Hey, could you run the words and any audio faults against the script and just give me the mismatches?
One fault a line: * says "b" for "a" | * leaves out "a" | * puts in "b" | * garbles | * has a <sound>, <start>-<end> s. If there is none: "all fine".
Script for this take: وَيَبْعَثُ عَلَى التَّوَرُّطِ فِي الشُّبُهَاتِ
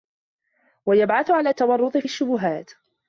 all fine